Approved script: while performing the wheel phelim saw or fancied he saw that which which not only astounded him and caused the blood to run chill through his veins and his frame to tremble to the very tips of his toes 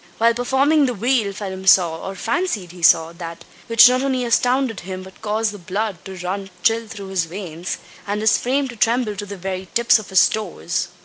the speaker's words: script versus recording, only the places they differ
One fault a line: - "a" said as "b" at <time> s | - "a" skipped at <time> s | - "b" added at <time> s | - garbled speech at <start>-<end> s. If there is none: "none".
- "which" skipped at 3.9 s
- "and" said as "but" at 5.0 s